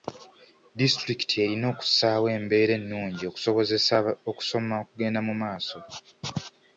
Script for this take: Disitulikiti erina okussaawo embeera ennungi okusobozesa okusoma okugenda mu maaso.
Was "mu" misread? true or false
false